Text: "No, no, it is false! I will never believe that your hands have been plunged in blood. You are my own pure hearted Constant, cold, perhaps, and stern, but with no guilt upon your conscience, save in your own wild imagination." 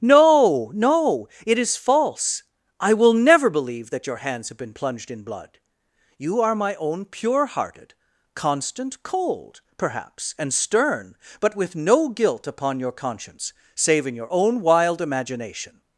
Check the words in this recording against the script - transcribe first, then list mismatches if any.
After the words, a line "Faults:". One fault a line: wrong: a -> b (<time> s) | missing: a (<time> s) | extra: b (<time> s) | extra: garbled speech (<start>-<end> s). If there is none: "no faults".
"No, no, it is false! I will never believe that your hands have been plunged in blood. You are my own pure hearted Constant, cold, perhaps, and stern, but with no guilt upon your conscience, save in your own wild imagination."
Faults:
no faults